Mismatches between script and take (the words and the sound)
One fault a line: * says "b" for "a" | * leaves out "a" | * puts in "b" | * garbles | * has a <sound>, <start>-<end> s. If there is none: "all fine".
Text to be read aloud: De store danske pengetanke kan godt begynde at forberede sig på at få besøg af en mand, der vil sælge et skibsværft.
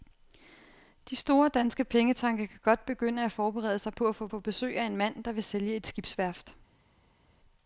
* puts in "få"